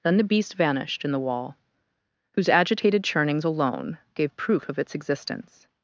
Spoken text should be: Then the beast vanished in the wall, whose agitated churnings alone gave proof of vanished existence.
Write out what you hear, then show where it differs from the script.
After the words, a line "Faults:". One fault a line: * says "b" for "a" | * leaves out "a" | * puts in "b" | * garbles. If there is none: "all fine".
Then the beast vanished in the wall, whose agitated churnings alone gave proof of its existence.
Faults:
* says "its" for "vanished"